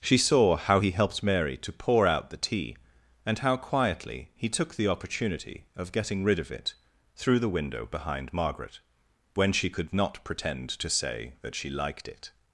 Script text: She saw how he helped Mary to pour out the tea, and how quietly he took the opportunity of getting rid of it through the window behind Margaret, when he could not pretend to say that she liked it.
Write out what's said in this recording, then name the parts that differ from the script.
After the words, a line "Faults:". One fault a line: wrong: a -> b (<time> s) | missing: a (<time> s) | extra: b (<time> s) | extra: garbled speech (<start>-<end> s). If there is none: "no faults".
She saw how he helped Mary to pour out the tea, and how quietly he took the opportunity of getting rid of it through the window behind Margaret, when she could not pretend to say that she liked it.
Faults:
wrong: he -> she (9.5 s)